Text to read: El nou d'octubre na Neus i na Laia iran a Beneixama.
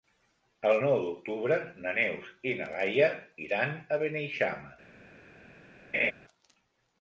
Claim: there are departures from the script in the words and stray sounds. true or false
true